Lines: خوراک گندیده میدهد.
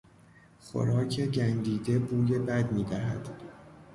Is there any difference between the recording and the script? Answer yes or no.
yes